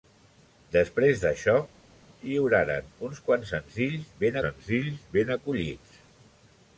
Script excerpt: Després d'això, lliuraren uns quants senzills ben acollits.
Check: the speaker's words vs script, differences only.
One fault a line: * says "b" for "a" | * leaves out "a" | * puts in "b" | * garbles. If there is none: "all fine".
* puts in "senzills ben"